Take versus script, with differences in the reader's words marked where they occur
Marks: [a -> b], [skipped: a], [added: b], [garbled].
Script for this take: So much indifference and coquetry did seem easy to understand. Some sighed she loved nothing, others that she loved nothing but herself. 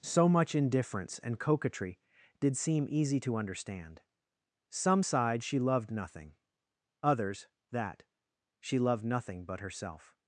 So much indifference and coquetry did seem easy to understand. Some sighed she loved nothing, others that she loved nothing but herself.